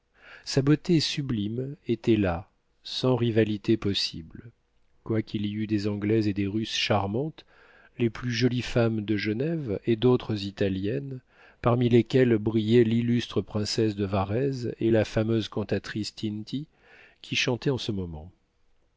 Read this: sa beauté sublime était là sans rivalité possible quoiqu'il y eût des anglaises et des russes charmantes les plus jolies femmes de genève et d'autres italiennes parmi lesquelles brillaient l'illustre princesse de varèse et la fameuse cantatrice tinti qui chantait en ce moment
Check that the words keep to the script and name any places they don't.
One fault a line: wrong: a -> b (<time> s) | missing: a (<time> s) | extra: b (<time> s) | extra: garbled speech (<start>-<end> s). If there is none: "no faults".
no faults